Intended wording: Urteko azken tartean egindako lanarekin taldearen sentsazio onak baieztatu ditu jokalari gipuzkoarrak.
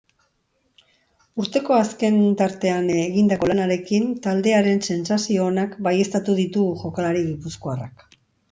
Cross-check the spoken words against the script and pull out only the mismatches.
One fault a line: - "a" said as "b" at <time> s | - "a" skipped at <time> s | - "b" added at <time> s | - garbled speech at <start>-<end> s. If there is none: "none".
none